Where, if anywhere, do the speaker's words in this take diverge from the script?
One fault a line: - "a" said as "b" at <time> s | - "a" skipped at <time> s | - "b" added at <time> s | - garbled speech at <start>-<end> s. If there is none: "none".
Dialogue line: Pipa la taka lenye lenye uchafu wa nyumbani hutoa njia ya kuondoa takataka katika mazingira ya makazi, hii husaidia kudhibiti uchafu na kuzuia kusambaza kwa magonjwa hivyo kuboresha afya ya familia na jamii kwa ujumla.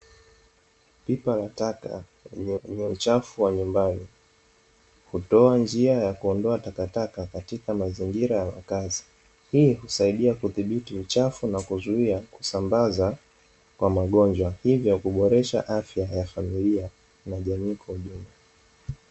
none